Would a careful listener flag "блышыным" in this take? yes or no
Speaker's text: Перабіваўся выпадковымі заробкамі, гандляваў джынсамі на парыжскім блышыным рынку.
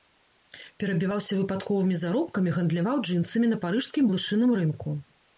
no